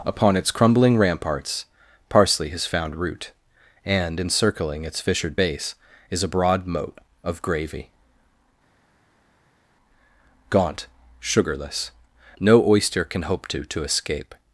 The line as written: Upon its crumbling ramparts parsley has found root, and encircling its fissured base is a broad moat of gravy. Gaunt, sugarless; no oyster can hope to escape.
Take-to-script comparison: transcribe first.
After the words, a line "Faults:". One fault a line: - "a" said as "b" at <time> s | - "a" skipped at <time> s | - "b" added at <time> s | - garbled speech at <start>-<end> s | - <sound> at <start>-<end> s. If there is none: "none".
Upon its crumbling ramparts parsley has found root, and encircling its fissured base is a broad moat of gravy. Gaunt, sugarless; no oyster can hope to to escape.
Faults:
- "to" added at 13.6 s